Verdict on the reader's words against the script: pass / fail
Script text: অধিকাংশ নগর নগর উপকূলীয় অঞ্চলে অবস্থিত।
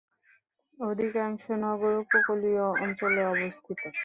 fail